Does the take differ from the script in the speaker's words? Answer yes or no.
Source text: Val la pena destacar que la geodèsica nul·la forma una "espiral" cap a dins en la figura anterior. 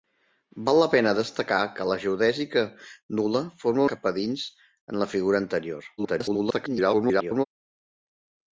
yes